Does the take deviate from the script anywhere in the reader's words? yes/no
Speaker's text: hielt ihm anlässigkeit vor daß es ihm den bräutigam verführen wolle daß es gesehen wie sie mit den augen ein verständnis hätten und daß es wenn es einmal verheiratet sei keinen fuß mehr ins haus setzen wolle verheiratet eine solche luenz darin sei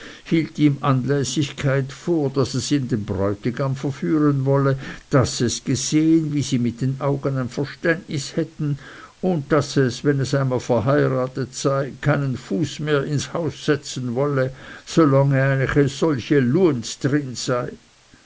yes